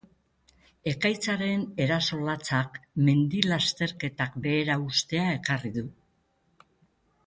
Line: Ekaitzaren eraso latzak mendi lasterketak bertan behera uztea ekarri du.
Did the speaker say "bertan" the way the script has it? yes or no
no